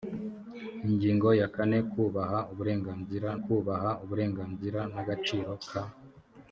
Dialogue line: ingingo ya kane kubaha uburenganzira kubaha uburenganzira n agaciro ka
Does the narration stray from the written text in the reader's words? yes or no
no